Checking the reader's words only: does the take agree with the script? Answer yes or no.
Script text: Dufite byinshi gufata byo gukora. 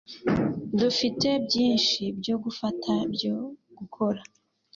no